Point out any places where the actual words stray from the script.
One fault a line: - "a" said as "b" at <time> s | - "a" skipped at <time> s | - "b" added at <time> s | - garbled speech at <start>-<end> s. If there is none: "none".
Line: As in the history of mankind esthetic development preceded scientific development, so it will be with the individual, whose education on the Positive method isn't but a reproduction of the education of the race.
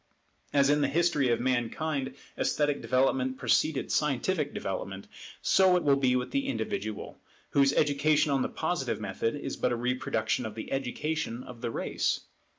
- "isn't" said as "is" at 9.3 s